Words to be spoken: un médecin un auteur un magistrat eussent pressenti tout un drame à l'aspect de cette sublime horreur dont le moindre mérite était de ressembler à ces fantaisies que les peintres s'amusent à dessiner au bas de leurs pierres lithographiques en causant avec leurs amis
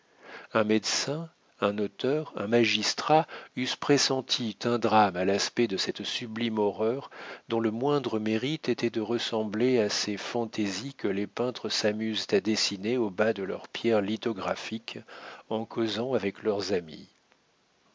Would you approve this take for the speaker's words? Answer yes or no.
no